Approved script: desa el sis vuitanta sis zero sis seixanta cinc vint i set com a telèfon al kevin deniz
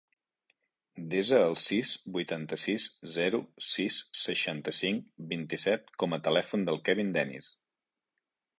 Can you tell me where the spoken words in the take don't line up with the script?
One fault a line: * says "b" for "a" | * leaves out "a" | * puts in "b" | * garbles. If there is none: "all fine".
* says "del" for "al"